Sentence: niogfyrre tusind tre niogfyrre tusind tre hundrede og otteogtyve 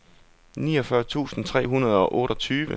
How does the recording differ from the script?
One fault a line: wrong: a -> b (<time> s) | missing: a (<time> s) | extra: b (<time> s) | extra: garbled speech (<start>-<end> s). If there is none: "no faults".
missing: niogfyrre tusind tre (1.7 s)